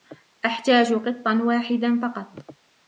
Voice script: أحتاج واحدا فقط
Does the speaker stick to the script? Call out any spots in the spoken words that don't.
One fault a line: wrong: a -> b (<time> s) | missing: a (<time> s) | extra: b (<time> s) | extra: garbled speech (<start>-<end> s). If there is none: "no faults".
extra: قطا (0.9 s)